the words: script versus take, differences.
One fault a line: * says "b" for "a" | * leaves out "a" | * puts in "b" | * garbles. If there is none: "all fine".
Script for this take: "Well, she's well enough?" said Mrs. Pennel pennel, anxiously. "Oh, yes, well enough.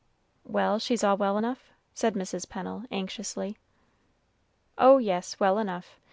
* puts in "all"
* leaves out "pennel"